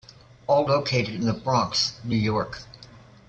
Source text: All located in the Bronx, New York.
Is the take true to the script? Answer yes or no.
yes